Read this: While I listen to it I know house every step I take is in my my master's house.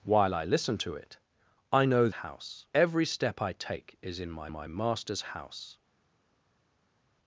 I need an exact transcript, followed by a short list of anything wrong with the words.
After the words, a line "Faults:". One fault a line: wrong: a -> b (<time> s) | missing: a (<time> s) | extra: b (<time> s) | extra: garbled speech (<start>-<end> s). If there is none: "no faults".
While I listen to it I know house every step I take is in my my master's house.
Faults:
no faults